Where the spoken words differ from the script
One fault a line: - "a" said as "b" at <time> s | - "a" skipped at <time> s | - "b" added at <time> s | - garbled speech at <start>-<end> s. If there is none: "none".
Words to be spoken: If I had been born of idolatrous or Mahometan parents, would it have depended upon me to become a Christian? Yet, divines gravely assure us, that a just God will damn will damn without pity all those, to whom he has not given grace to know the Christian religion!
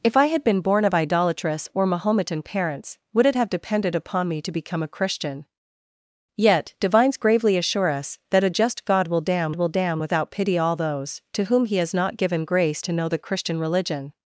none